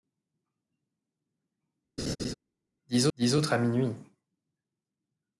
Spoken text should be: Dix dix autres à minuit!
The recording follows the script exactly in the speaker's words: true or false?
true